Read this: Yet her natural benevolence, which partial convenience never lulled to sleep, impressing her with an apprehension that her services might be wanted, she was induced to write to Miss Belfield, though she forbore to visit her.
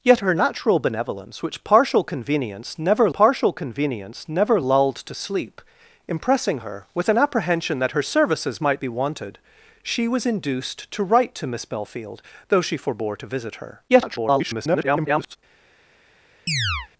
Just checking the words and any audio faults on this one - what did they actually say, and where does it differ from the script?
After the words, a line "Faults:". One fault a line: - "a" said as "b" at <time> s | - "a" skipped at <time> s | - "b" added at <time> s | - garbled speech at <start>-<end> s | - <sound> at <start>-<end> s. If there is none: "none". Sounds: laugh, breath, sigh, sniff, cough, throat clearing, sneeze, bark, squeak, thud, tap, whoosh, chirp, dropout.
Yet her natural benevolence, which partial convenience never partial convenience never lulled to sleep, impressing her with an apprehension that her services might be wanted, she was induced to write to Miss Belfield, though she forbore to visit her. [garbled]
Faults:
- "partial convenience never" added at 3.1 s
- garbled speech at 13.9-15.4 s
- chirp at 16.5-16.9 s